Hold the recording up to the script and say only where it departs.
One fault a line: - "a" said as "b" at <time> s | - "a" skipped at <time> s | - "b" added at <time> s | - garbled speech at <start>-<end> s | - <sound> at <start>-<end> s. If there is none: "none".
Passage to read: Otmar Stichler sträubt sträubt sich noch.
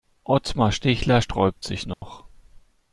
- "sträubt" skipped at 1.7 s
- dropout at 1.9-2.0 s